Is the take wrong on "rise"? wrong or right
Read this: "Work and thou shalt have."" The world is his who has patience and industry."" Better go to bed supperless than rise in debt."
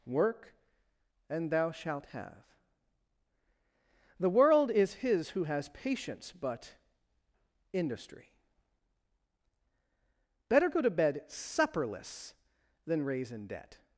wrong